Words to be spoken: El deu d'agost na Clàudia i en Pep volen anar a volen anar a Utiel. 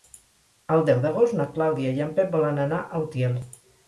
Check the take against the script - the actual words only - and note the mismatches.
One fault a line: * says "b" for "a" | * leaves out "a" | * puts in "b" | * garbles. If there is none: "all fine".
* leaves out "volen anar a"